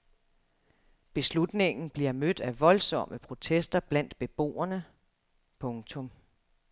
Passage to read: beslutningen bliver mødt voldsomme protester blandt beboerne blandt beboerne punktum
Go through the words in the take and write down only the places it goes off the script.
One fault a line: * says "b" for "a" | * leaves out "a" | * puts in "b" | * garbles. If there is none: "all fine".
* puts in "af"
* leaves out "blandt beboerne"